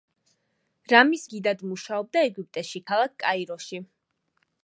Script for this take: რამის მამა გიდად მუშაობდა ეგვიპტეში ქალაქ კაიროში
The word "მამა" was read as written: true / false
false